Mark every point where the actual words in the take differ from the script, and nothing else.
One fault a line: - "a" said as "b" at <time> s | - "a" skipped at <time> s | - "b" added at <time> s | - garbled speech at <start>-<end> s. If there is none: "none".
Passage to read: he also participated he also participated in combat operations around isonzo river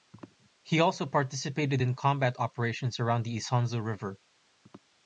- "he also participated" skipped at 1.8 s
- "the" added at 3.3 s